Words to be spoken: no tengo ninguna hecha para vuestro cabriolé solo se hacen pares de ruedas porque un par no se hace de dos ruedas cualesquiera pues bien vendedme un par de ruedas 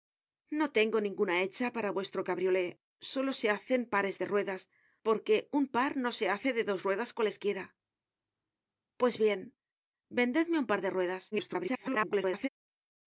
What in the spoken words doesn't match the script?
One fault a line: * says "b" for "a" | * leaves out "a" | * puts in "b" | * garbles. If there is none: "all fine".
* garbles